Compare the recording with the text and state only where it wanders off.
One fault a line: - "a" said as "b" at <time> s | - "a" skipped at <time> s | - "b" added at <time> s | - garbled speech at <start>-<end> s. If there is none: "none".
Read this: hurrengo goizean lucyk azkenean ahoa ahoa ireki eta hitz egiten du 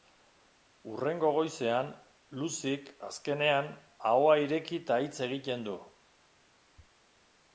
- "ahoa" skipped at 4.3 s